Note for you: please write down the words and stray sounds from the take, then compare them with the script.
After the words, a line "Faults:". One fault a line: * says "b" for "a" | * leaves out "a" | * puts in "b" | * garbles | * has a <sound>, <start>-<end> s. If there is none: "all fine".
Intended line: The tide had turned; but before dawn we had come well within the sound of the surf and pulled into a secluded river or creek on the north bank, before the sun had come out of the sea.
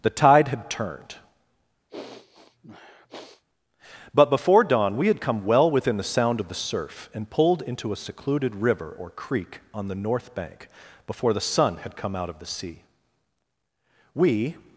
The tide had turned; but before dawn we had come well within the sound of the surf and pulled into a secluded river or creek on the north bank, before the sun had come out of the sea. We
Faults:
* has a sniff, 1.9-3.4 s
* puts in "We"